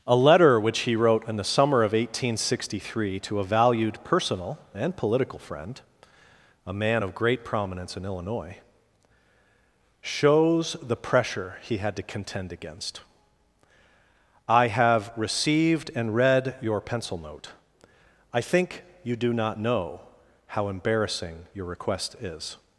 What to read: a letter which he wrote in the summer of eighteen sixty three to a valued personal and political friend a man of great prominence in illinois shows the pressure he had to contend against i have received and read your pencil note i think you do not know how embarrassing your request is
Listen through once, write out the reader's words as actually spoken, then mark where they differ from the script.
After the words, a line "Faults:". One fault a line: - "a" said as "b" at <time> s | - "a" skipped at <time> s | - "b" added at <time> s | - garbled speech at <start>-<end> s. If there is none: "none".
a letter which he wrote in the summer of eighteen sixty three to a valued personal and political friend a man of great prominence in illinois shows the pressure he had to contend against i have received and read your pencil note i think you do not know how embarrassing your request is
Faults:
none